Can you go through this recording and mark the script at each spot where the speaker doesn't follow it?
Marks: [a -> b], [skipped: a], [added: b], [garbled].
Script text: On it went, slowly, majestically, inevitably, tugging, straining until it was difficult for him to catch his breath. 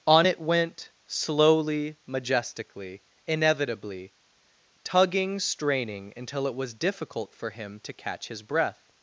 On it went, slowly, majestically, inevitably, tugging, straining until it was difficult for him to catch his breath.